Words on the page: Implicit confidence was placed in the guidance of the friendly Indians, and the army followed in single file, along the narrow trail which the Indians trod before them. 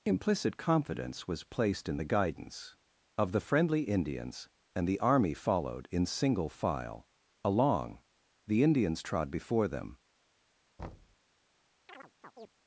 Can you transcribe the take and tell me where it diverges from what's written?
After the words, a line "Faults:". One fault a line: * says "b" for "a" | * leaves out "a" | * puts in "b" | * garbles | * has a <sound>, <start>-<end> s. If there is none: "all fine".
Implicit confidence was placed in the guidance of the friendly Indians, and the army followed in single file, along the Indians trod before them.
Faults:
* leaves out "narrow trail which the"
* has a thud, 10.8-11.2 s
* has a chirp, 11.9-12.5 s